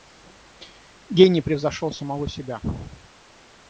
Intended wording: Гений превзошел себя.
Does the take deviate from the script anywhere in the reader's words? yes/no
yes